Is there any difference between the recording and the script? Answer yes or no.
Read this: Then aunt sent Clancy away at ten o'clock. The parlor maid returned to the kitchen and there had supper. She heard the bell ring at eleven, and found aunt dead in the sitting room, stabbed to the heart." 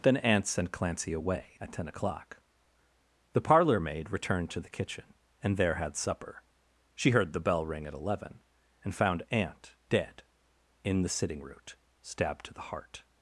yes